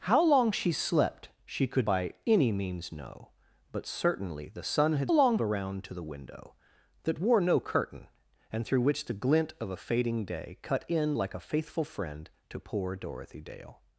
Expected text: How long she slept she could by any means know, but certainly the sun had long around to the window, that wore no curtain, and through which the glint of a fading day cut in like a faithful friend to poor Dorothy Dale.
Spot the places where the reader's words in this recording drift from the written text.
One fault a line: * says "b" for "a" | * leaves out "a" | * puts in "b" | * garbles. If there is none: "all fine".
all fine